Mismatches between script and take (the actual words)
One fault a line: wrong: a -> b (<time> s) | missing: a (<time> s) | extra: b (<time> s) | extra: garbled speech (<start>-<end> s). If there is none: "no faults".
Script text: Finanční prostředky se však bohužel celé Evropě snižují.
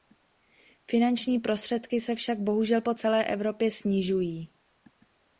extra: po (2.8 s)